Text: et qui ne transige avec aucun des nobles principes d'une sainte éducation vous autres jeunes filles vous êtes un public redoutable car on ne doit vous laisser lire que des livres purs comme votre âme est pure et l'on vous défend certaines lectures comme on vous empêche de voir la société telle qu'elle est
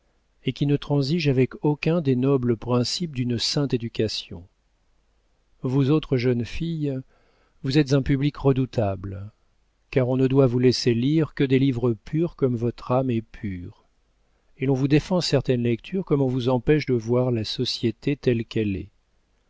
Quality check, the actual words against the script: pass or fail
pass